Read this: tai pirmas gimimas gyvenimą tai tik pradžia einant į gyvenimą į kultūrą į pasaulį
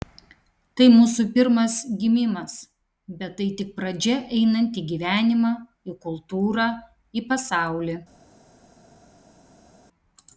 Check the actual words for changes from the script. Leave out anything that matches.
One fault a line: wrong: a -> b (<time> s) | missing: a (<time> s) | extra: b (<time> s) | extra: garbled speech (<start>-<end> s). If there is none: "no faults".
extra: mūsų (0.9 s)
wrong: gyvenimą -> bet (3.2 s)